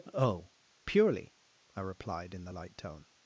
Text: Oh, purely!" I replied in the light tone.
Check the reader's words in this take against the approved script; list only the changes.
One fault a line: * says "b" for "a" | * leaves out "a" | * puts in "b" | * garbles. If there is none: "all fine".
all fine